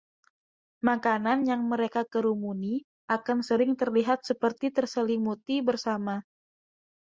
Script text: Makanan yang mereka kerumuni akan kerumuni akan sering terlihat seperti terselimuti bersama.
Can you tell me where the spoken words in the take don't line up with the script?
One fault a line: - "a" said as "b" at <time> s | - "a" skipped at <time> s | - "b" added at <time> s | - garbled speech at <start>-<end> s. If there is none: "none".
- "kerumuni akan" skipped at 3.4 s